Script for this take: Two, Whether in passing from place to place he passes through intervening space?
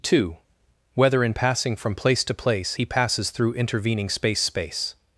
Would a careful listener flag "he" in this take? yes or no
no